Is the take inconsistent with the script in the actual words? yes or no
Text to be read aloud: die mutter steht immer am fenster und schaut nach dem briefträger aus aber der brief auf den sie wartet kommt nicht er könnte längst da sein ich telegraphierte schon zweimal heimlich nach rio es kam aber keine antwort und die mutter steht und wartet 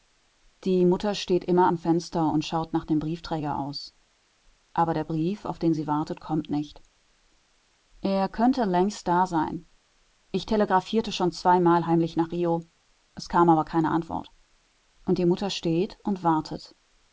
no